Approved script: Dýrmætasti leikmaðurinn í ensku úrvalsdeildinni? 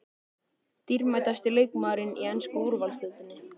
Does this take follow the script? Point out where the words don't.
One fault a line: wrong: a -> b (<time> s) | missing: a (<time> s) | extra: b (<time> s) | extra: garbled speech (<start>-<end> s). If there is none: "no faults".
no faults